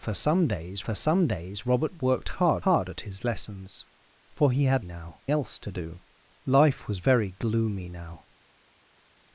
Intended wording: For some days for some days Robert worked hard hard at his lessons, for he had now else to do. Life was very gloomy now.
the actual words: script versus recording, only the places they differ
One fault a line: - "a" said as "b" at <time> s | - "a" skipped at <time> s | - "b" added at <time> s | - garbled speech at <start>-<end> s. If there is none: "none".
none